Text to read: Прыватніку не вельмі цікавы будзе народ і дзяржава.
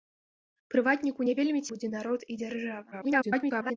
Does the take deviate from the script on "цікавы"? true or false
true